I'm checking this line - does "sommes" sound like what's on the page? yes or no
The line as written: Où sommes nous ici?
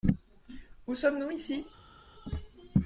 yes